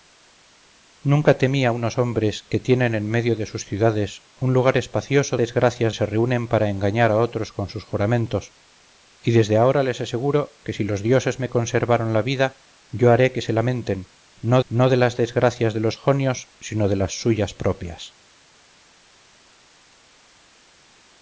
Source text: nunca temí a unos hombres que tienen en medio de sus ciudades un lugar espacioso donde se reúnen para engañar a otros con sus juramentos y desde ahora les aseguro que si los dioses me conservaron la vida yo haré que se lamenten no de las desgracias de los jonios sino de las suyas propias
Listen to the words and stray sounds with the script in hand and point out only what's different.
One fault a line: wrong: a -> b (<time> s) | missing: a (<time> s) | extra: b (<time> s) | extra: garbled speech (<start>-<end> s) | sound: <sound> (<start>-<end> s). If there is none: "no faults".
wrong: donde -> desgracias (5.3 s)
extra: no (14.7 s)